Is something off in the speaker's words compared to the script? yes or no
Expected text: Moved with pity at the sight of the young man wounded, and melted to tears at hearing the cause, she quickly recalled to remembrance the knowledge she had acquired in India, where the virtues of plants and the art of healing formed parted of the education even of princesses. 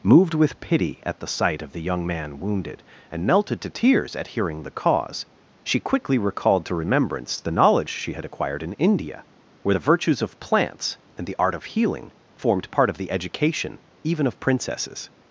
yes